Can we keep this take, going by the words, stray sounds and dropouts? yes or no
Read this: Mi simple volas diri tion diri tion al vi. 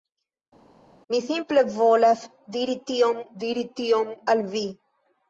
yes